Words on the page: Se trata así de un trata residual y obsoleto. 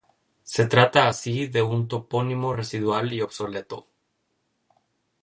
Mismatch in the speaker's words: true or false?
true